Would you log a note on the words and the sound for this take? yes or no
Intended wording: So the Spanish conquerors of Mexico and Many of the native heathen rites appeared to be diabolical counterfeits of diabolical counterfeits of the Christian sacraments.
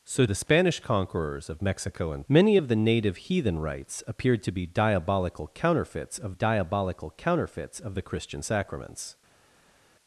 no